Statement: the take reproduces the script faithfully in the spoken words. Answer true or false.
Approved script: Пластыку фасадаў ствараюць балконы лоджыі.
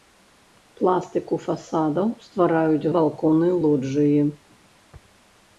true